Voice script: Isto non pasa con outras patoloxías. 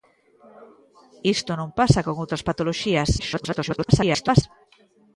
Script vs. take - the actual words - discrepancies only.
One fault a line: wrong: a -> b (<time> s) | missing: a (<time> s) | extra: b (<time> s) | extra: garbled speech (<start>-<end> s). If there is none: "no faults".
extra: garbled speech (3.2-4.4 s)